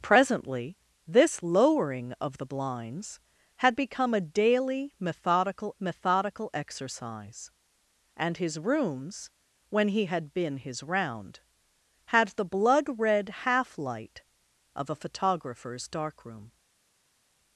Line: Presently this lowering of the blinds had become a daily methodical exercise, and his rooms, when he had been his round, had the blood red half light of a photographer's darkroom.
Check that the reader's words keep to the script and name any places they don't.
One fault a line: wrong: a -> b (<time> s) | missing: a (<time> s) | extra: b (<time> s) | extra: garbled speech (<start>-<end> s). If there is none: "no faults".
extra: methodical (5.8 s)